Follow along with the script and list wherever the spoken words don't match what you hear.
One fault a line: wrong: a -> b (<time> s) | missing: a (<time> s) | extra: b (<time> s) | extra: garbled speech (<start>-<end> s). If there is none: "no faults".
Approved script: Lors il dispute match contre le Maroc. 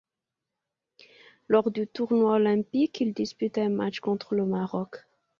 extra: du tournoi olympique (1.7 s)
extra: un (3.6 s)